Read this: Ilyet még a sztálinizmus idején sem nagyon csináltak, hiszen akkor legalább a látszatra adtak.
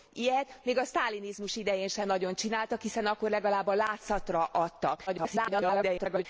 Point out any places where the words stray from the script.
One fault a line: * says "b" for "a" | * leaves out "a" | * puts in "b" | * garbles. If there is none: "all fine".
* garbles